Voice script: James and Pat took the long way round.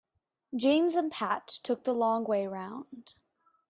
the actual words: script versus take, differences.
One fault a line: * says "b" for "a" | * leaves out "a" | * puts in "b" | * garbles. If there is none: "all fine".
all fine